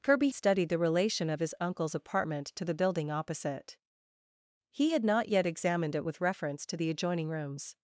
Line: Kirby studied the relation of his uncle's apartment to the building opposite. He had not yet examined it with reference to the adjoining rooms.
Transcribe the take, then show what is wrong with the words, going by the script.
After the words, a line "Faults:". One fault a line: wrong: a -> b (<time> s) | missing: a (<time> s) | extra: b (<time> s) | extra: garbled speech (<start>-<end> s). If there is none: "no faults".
Kirby studied the relation of his uncle's apartment to the building opposite. He had not yet examined it with reference to the adjoining rooms.
Faults:
no faults